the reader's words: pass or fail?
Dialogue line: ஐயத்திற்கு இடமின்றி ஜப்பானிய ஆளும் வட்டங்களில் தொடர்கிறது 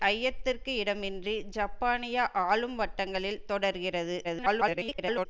fail